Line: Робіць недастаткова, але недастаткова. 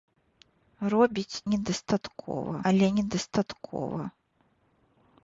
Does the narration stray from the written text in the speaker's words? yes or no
no